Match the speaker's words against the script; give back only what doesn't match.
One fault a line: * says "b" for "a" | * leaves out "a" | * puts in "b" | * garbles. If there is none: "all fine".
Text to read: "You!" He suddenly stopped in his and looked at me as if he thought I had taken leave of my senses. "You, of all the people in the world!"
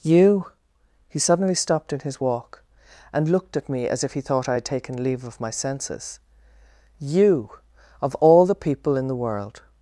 * puts in "walk"